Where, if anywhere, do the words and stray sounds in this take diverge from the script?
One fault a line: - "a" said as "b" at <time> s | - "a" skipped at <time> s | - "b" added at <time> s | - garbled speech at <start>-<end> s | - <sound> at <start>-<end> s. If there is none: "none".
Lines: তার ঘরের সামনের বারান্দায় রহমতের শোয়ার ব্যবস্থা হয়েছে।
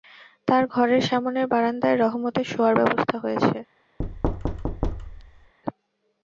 - thud at 4.0-5.5 s